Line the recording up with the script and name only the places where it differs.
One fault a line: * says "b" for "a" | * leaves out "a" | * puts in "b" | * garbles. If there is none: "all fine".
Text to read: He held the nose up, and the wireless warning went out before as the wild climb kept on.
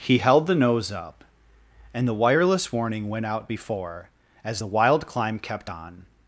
all fine